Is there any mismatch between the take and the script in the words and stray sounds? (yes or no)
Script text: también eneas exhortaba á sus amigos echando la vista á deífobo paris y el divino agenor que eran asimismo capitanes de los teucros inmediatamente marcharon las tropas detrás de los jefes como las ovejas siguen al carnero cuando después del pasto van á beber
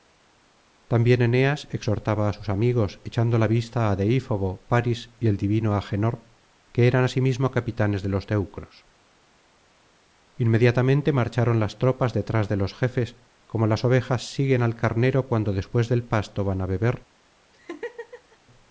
yes